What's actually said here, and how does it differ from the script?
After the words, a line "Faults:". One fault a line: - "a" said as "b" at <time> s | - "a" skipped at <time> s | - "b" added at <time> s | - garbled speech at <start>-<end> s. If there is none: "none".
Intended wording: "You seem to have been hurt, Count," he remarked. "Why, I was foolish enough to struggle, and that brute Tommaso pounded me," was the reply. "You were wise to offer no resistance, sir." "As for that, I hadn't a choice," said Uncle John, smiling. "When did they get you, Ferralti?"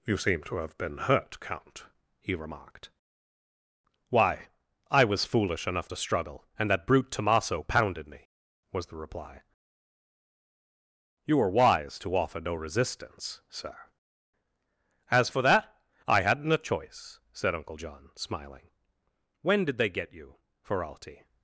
"You seem to have been hurt, Count," he remarked. "Why, I was foolish enough to struggle, and that brute Tommaso pounded me," was the reply. "You were wise to offer no resistance, sir." "As for that, I hadn't a choice," said Uncle John, smiling. "When did they get you, Ferralti?"
Faults:
none